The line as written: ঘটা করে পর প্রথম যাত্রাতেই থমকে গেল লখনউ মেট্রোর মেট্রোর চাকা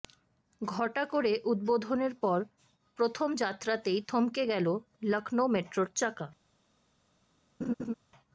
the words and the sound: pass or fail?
fail